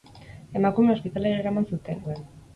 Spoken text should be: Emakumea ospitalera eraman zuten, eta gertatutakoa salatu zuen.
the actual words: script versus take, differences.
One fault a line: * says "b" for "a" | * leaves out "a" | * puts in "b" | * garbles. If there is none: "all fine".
* leaves out "eta gertatutakoa salatu"